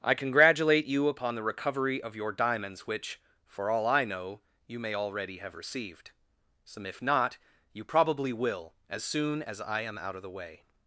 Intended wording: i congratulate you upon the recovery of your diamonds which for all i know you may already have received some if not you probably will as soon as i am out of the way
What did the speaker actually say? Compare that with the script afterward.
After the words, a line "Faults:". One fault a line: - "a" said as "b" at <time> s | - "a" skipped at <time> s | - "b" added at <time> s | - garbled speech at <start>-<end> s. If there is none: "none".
i congratulate you upon the recovery of your diamonds which for all i know you may already have received some if not you probably will as soon as i am out of the way
Faults:
none